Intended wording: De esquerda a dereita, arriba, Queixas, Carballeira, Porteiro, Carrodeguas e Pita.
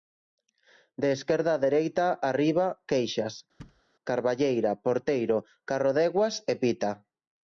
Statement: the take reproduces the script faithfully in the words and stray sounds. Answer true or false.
false